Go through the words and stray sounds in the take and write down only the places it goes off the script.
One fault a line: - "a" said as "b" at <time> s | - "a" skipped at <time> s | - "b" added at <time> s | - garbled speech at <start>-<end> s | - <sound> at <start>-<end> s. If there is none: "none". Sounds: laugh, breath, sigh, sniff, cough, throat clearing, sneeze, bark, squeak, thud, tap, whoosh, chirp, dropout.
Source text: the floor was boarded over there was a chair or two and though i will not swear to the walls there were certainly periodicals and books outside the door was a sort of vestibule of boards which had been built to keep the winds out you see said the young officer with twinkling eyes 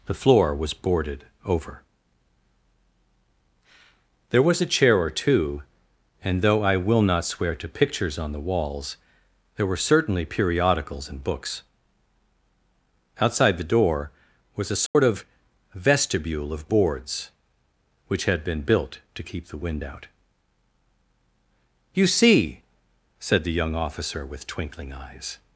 - "pictures on" added at 7.7 s
- dropout at 14.9-15.0 s
- "winds" said as "wind" at 19.6 s